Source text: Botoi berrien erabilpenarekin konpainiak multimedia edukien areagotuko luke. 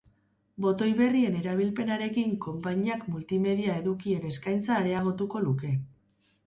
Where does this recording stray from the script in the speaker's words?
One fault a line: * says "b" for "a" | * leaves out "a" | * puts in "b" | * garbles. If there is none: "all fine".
* puts in "eskaintza"